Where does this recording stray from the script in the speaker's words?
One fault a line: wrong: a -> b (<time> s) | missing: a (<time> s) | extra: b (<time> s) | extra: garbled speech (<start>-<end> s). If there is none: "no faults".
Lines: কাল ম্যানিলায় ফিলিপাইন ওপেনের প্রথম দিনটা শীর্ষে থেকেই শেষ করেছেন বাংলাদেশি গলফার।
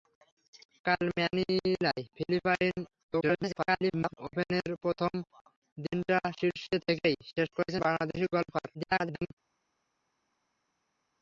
extra: garbled speech (3.1-4.2 s)
extra: garbled speech (8.7-9.3 s)